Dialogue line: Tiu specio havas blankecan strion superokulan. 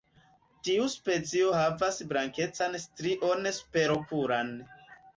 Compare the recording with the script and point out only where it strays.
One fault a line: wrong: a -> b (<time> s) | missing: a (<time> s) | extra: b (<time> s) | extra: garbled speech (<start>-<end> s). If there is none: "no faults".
no faults